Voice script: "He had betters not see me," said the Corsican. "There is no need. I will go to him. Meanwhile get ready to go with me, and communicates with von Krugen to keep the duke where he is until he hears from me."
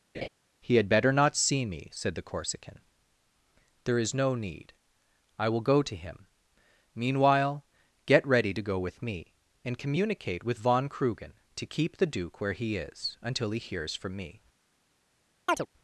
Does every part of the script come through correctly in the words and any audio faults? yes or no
no